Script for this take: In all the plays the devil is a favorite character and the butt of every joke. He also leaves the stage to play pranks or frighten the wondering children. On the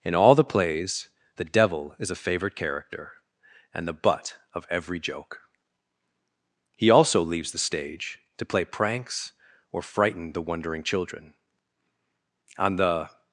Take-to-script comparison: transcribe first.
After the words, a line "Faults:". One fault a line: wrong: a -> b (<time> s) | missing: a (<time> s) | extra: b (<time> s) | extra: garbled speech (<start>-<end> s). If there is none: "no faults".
In all the plays the devil is a favorite character and the butt of every joke. He also leaves the stage to play pranks or frighten the wondering children. On the
Faults:
no faults